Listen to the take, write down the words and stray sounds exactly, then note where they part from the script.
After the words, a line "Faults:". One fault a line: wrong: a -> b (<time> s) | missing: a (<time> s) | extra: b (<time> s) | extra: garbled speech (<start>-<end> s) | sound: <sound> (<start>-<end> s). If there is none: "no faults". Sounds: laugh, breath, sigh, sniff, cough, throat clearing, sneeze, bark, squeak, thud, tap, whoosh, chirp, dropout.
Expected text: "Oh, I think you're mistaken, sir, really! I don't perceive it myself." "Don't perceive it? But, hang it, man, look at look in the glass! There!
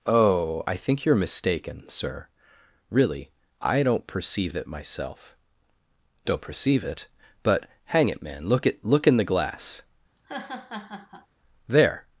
"Oh, I think you're mistaken, sir, really! I don't perceive it myself." "Don't perceive it? But, hang it, man, look at look in the glass! There!
Faults:
sound: laugh (10.2-11.3 s)